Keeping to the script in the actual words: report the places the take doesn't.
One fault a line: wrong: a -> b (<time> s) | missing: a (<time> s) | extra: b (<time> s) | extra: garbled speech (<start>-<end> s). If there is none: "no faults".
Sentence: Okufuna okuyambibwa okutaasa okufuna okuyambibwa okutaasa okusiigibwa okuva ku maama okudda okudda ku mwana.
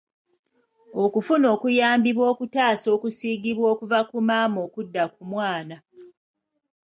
missing: okufuna okuyambibwa okutaasa (2.9 s)
missing: okudda (5.0 s)